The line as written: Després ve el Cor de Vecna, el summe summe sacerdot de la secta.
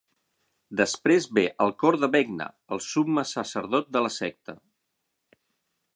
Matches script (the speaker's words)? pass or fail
fail